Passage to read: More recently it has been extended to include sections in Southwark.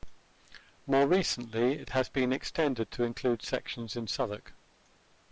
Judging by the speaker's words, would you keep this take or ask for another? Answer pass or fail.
pass